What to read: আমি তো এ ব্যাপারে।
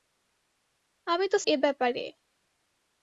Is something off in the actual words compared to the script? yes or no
no